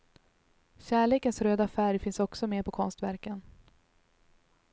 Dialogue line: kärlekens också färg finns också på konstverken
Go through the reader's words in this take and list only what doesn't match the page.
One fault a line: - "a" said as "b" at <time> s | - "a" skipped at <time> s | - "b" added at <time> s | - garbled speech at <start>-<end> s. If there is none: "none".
- "också" said as "röda" at 1.4 s
- "med" added at 2.5 s